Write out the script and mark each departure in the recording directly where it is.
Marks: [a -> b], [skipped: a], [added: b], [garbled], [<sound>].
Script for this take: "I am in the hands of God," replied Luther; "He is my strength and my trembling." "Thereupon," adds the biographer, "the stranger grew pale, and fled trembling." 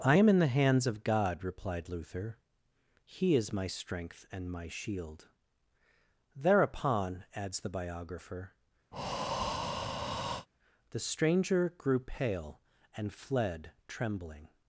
"I am in the hands of God," replied Luther; "He is my strength and my [trembling." -> shield] "Thereupon," adds the biographer, [breath] "the stranger grew pale, and fled trembling."